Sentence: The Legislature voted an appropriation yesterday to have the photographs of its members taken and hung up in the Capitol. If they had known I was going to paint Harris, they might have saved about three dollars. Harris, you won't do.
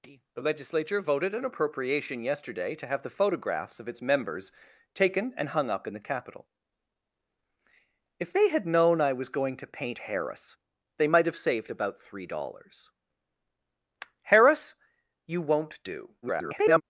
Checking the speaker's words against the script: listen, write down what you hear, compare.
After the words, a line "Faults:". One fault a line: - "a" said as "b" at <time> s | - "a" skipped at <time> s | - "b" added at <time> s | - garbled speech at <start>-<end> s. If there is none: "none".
The Legislature voted an appropriation yesterday to have the photographs of its members taken and hung up in the Capitol. If they had known I was going to paint Harris, they might have saved about three dollars. Harris, you won't do. [garbled]
Faults:
- garbled speech at 16.2-16.8 s